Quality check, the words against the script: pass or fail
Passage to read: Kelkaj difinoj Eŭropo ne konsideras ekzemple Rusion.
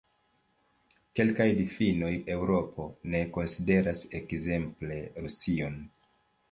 pass